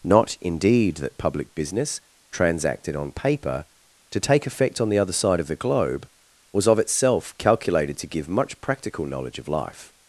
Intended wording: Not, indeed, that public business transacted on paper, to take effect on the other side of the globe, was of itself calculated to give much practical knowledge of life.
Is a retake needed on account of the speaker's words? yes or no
no